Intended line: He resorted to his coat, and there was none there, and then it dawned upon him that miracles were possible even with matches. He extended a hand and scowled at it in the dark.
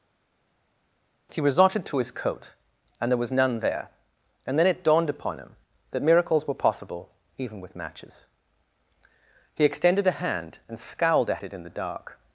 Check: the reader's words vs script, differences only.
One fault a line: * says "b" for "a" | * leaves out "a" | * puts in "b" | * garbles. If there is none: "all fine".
all fine